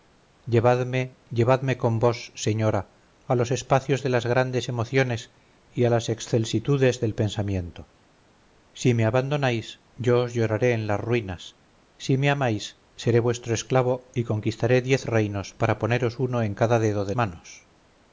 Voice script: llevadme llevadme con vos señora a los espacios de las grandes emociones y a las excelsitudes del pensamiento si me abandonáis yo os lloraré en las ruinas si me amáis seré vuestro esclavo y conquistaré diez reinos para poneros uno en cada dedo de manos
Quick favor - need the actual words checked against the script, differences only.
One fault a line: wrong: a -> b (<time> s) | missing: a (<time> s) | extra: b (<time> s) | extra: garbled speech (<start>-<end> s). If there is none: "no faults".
no faults